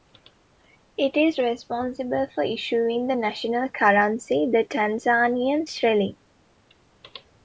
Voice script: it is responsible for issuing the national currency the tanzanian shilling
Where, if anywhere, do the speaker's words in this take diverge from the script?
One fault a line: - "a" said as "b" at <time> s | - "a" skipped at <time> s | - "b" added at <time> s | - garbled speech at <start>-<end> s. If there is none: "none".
none